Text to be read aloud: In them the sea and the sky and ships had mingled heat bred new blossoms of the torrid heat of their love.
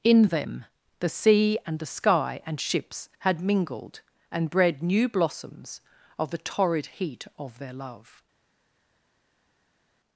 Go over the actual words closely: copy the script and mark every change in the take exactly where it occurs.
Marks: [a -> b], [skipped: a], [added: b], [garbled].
In them the sea and the sky and ships had mingled [heat -> and] bred new blossoms of the torrid heat of their love.